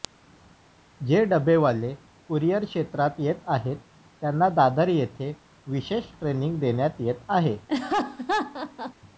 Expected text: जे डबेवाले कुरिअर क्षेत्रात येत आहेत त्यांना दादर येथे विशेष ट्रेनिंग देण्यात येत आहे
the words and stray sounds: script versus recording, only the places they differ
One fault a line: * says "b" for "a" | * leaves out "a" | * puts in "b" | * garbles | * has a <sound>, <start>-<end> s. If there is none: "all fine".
* has a laugh, 7.7-8.9 s